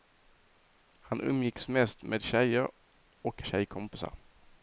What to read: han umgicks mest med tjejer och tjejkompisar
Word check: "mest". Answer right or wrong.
right